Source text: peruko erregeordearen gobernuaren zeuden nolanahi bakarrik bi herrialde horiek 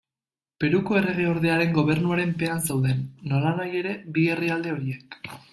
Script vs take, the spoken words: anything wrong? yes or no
yes